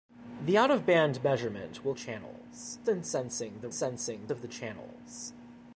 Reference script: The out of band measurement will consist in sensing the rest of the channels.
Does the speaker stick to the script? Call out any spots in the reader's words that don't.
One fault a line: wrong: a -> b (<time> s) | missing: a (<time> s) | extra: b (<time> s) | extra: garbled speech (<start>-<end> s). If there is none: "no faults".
wrong: consist -> channels (1.9 s)
wrong: rest -> sensing (3.7 s)